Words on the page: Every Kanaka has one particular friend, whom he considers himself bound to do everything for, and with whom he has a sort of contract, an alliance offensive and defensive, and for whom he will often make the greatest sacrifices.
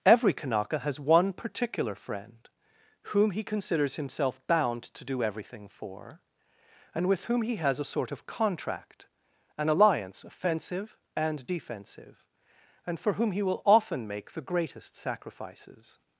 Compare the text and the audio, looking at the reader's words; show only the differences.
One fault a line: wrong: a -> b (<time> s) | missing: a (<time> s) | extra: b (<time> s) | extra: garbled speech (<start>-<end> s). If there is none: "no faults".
no faults